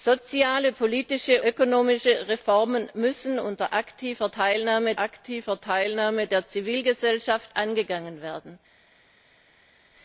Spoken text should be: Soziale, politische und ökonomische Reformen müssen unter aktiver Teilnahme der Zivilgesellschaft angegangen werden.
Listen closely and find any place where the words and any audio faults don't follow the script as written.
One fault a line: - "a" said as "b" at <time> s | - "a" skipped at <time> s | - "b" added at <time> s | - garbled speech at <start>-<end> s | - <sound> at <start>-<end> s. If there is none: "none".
- "und" skipped at 1.4 s
- "aktiver Teilnahme" added at 5.0 s